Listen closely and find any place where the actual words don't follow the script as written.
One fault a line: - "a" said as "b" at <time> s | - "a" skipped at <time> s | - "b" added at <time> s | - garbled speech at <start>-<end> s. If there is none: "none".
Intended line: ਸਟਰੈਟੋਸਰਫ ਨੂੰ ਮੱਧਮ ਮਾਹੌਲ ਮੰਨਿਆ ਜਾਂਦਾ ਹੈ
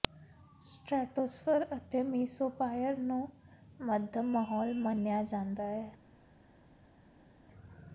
- "ਅਤੇ ਮੀਸੋਪਾਈਅਰ" added at 1.8 s